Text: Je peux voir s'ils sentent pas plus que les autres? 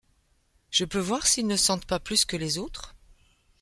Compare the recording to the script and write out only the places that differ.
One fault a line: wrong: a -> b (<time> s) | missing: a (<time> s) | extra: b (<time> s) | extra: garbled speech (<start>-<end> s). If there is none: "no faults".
extra: ne (1.4 s)